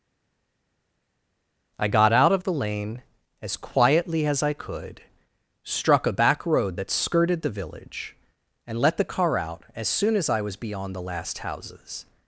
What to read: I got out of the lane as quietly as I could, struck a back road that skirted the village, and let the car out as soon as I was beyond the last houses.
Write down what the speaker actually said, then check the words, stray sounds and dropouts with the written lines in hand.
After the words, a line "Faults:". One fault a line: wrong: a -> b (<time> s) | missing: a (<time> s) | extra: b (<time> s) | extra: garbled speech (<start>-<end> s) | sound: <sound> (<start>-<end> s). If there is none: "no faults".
I got out of the lane as quietly as I could, struck a back road that skirted the village, and let the car out as soon as I was beyond the last houses.
Faults:
no faults